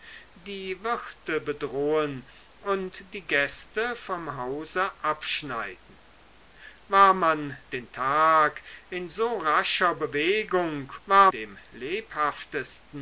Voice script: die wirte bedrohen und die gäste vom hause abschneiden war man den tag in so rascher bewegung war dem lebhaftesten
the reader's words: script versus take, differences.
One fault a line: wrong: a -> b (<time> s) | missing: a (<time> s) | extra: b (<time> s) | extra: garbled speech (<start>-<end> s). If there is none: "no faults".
no faults